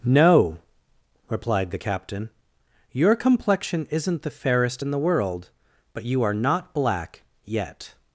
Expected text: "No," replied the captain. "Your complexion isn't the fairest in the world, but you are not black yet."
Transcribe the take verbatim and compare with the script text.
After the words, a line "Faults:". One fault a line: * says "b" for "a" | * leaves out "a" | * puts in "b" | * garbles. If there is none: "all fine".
"No," replied the captain. "Your complexion isn't the fairest in the world, but you are not black yet."
Faults:
all fine